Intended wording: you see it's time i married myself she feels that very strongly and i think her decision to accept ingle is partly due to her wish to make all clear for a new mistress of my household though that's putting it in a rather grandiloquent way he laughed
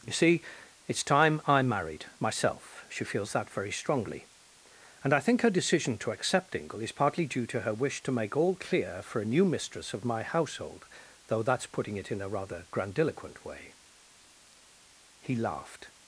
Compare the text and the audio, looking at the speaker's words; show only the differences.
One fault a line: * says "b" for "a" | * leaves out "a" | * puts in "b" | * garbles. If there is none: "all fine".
all fine